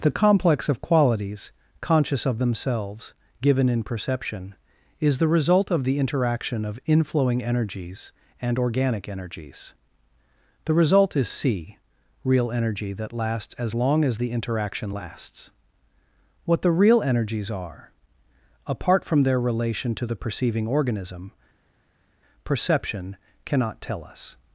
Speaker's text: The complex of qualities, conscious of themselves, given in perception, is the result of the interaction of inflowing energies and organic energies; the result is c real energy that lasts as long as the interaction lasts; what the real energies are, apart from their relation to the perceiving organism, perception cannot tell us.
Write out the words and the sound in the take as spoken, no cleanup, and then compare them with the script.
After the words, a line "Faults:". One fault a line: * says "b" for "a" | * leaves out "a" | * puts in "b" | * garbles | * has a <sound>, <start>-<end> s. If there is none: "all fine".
The complex of qualities, conscious of themselves, given in perception, is the result of the interaction of inflowing energies and organic energies; the result is c real energy that lasts as long as the interaction lasts; what the real energies are, apart from their relation to the perceiving organism, perception cannot tell us.
Faults:
all fine